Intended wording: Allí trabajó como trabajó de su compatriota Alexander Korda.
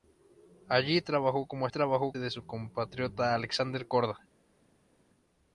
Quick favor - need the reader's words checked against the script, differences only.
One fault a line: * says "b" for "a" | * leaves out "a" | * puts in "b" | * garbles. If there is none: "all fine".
all fine